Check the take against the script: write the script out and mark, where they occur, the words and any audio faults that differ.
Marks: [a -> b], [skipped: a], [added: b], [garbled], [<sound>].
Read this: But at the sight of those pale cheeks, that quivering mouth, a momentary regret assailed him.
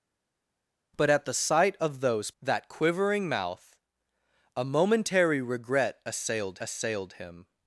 But at the sight of those [skipped: pale cheeks,] that quivering mouth, a momentary regret assailed [added: assailed] him.